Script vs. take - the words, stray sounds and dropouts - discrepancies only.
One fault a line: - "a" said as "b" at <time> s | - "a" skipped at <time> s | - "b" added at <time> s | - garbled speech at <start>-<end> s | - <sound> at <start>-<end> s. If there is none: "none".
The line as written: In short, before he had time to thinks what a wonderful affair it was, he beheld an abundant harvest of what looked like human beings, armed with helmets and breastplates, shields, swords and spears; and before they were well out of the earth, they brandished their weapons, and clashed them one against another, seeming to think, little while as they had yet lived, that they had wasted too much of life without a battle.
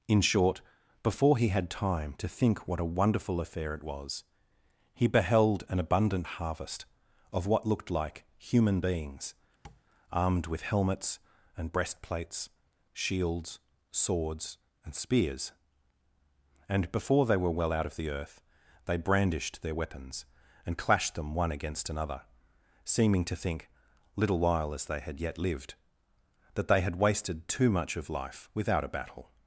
- "thinks" said as "think" at 2.3 s
- tap at 9.6-9.8 s